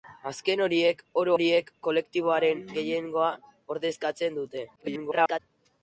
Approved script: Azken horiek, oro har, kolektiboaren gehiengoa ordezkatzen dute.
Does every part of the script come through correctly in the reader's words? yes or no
no